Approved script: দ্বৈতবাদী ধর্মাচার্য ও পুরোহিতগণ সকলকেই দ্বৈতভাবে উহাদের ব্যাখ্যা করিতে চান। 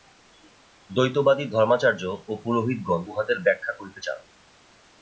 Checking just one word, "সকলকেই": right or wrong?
wrong